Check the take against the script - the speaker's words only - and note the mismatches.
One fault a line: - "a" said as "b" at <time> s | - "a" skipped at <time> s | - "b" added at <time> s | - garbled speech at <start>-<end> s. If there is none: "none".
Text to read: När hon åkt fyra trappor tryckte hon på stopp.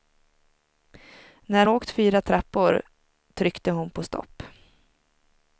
- "hon" skipped at 1.7 s